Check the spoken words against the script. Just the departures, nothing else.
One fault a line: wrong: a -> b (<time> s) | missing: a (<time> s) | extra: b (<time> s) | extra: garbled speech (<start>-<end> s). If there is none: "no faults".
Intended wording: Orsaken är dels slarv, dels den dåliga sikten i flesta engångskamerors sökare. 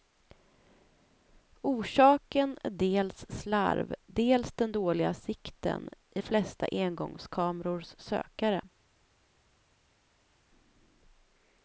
no faults